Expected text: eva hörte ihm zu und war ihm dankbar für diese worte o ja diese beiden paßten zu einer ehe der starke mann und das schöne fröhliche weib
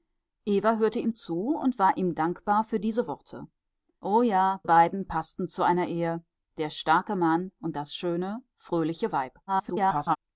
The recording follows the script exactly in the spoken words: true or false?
false